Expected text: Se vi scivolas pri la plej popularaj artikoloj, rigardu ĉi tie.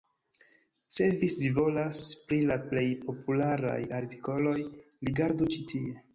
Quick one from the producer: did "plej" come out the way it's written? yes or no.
yes